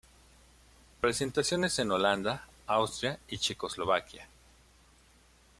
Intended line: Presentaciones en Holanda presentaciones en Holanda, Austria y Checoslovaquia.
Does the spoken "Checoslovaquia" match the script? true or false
true